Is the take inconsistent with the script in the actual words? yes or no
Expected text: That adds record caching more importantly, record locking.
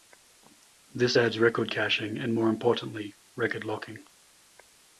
yes